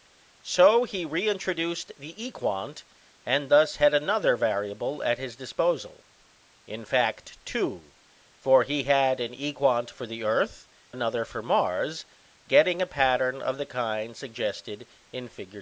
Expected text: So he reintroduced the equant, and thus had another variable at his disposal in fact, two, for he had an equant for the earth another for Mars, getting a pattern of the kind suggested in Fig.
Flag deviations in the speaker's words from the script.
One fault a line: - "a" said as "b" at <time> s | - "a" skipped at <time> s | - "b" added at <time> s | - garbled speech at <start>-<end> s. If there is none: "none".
none